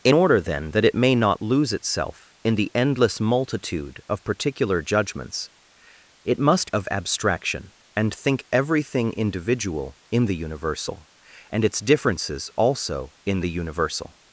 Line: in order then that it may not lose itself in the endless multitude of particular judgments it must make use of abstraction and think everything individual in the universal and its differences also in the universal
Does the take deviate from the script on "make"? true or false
true